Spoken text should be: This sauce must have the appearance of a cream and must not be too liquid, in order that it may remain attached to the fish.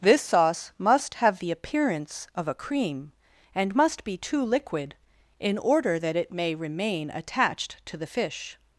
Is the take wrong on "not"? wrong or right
wrong